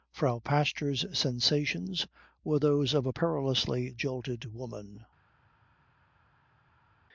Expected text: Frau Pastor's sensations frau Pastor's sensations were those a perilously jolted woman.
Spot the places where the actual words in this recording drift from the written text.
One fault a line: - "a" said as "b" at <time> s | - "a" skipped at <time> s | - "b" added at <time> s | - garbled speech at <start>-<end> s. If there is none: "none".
- "frau Pastor's sensations" skipped at 2.1 s
- "of" added at 2.9 s